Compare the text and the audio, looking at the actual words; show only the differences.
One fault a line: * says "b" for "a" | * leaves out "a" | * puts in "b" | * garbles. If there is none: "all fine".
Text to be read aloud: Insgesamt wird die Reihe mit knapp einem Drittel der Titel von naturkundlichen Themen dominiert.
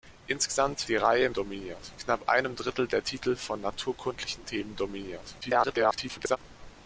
* leaves out "wird"
* says "dominiert" for "mit"
* garbles